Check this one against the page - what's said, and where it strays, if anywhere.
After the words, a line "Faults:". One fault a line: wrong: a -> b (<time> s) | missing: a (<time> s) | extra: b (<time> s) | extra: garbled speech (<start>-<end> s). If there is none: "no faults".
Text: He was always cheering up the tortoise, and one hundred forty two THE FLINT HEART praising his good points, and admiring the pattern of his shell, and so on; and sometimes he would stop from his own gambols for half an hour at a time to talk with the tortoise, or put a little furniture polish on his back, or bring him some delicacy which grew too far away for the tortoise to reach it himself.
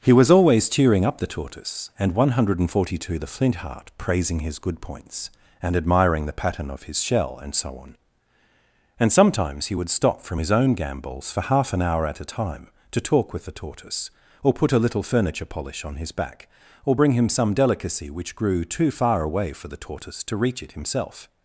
He was always cheering up the tortoise, and one hundred forty two THE FLINT HEART praising his good points, and admiring the pattern of his shell, and so on; and sometimes he would stop from his own gambols for half an hour at a time to talk with the tortoise, or put a little furniture polish on his back, or bring him some delicacy which grew too far away for the tortoise to reach it himself.
Faults:
no faults